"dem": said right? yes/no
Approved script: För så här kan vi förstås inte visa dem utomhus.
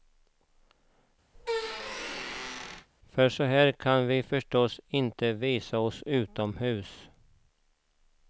no